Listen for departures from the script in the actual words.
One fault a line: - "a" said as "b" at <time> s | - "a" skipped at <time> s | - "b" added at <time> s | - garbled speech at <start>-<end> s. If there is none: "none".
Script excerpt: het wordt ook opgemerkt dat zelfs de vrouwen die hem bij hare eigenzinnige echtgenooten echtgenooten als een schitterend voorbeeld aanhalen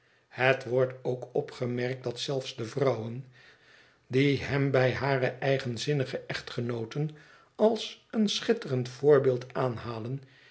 - "echtgenooten" skipped at 7.2 s